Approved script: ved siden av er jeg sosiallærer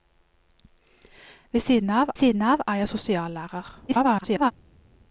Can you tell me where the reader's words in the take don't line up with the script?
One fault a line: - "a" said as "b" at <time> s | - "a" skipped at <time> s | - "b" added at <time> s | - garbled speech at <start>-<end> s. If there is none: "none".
- "siden av" added at 2.1 s
- garbled speech at 3.9-4.5 s